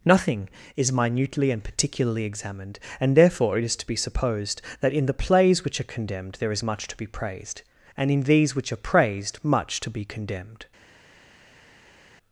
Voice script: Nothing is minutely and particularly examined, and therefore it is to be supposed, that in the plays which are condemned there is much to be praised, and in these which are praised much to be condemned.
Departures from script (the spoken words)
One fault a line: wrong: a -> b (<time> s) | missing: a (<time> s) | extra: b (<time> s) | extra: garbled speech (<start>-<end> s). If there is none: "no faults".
no faults